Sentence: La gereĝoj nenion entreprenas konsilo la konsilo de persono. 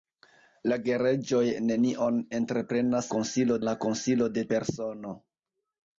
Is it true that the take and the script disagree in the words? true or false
false